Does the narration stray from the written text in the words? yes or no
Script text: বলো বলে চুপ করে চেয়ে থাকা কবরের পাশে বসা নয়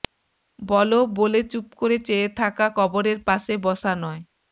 no